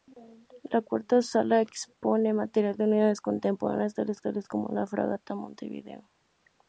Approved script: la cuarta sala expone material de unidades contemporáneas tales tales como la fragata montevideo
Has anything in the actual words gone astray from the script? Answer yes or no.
no